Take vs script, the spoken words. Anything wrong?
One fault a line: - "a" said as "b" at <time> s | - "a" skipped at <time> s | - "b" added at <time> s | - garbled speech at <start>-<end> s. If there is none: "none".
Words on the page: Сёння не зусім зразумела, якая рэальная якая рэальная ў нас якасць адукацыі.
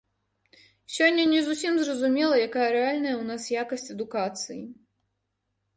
- "якая рэальная" skipped at 3.1 s